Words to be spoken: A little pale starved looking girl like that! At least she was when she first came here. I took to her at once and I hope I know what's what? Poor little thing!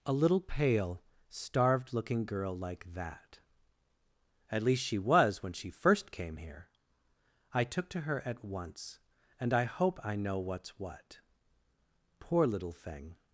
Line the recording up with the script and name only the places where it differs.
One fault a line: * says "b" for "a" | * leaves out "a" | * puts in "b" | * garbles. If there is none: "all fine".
all fine